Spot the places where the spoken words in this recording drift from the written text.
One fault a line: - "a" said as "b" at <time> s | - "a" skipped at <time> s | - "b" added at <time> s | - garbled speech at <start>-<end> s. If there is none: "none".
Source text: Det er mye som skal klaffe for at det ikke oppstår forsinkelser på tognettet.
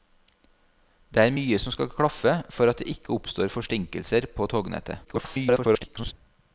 - garbled speech at 5.0-6.1 s